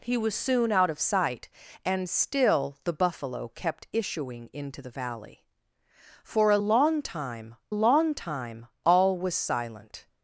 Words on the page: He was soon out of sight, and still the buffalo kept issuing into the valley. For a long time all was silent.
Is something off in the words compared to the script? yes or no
yes